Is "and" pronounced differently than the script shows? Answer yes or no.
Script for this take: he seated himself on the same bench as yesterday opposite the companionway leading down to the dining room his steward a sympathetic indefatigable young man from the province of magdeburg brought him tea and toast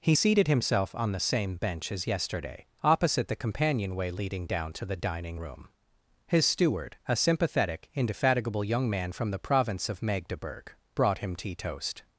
yes